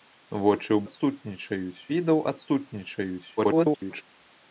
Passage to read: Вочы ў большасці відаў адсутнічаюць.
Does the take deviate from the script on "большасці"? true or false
true